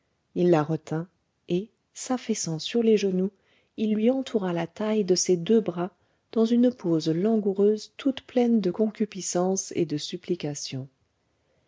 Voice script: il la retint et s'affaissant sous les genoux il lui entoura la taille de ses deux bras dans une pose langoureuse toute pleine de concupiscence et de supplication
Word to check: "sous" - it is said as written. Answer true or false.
false